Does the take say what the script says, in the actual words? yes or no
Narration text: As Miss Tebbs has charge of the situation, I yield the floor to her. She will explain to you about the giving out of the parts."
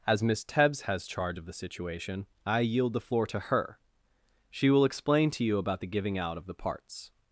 yes